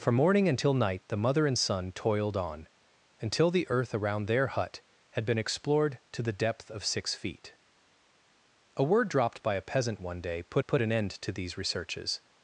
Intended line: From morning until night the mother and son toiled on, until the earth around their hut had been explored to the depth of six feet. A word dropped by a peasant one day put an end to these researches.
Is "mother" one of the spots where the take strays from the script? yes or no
no